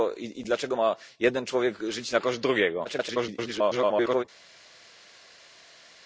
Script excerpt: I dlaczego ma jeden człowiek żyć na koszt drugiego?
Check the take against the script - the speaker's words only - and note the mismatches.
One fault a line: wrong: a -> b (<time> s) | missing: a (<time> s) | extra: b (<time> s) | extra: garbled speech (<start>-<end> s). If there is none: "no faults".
extra: garbled speech (2.8-4.2 s)